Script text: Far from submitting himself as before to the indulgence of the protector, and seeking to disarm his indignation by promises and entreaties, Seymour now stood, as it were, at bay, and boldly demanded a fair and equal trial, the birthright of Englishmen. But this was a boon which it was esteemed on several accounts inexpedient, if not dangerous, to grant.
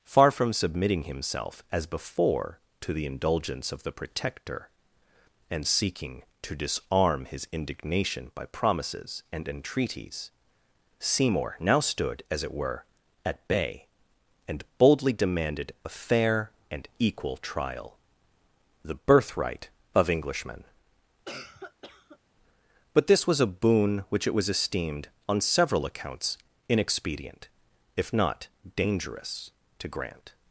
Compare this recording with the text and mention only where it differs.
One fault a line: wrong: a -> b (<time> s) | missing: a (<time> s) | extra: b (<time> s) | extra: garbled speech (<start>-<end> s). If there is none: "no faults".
no faults